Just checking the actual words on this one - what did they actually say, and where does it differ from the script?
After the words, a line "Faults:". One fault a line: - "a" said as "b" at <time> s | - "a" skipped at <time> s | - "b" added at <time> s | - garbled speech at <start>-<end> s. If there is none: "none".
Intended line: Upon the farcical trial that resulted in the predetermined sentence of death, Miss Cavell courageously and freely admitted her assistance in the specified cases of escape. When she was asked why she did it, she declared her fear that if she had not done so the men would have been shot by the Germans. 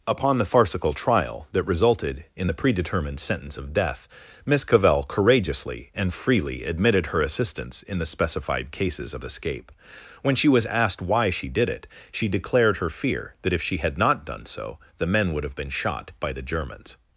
Upon the farcical trial that resulted in the predetermined sentence of death, Miss Cavell courageously and freely admitted her assistance in the specified cases of escape. When she was asked why she did it, she declared her fear that if she had not done so the men would have been shot by the Germans.
Faults:
none